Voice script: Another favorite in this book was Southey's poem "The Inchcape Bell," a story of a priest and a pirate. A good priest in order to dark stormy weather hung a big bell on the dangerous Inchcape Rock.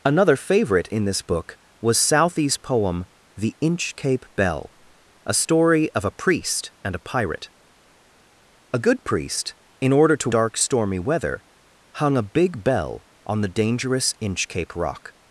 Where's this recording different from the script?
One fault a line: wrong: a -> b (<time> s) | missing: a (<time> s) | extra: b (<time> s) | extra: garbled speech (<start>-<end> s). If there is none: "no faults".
no faults